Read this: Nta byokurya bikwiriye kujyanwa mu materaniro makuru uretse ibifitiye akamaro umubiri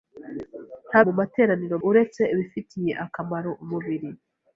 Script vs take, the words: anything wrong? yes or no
yes